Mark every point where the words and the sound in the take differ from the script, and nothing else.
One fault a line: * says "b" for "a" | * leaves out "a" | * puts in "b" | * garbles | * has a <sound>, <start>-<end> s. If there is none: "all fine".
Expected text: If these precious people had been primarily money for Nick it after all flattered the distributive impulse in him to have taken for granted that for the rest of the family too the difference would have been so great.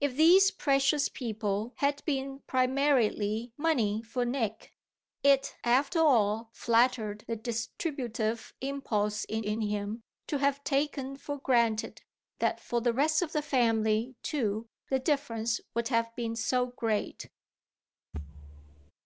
* puts in "in"
* has a thud, 18.1-18.9 s